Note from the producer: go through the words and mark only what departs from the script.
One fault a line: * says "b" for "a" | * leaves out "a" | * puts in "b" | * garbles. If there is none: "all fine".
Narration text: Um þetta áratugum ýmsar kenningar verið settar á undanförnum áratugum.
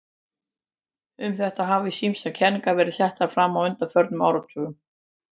* says "hafa" for "áratugum"
* puts in "fram"